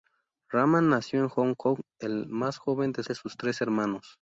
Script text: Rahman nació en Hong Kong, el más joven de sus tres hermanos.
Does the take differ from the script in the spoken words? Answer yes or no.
yes